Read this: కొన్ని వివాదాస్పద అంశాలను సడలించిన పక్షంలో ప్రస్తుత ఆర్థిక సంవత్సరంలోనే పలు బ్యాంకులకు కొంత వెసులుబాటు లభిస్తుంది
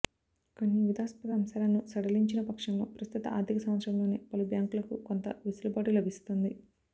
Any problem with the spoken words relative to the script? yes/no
no